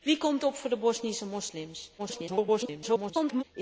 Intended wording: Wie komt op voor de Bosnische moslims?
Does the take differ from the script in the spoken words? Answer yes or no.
yes